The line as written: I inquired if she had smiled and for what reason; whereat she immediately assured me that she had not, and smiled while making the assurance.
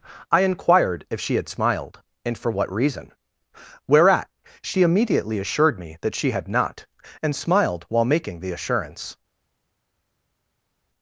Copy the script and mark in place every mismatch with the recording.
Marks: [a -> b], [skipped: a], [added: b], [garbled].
I inquired if she had smiled and for what reason; whereat she immediately assured me that she had not, and smiled while making the assurance.